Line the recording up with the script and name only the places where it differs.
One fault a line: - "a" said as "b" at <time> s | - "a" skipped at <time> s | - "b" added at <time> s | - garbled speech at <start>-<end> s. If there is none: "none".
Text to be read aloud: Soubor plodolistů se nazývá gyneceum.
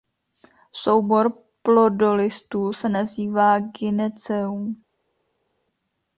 none